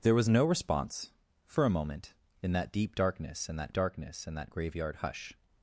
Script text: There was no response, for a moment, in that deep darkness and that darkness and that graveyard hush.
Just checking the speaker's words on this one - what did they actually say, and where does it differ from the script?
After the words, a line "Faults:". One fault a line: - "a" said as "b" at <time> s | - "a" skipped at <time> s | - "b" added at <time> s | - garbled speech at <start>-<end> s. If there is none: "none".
There was no response, for a moment, in that deep darkness and that darkness and that graveyard hush.
Faults:
none